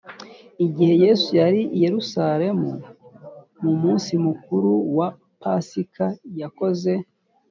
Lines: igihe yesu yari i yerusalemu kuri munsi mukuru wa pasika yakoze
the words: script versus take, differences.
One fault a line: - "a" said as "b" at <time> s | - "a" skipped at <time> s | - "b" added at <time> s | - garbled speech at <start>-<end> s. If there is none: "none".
- "kuri" said as "mu" at 3.6 s